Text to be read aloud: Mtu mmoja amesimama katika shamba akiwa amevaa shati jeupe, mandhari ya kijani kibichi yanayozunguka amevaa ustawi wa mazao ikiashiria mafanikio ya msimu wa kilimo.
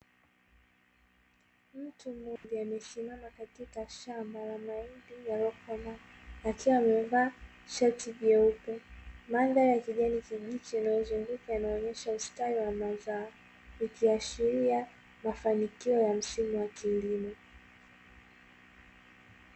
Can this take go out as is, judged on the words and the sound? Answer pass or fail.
fail